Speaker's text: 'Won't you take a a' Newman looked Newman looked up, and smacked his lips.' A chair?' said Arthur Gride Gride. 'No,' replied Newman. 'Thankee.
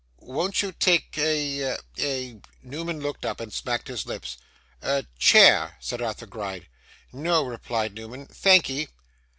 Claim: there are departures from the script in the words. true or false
true